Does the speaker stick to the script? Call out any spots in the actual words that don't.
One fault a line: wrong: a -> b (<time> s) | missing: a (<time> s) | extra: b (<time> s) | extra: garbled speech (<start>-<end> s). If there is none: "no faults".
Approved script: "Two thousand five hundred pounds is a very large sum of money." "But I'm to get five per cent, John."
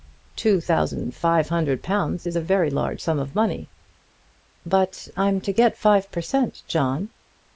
no faults